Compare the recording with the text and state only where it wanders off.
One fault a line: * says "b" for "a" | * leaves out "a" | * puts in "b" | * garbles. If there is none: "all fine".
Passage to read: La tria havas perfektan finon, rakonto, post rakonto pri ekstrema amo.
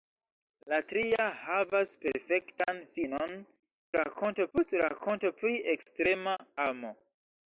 all fine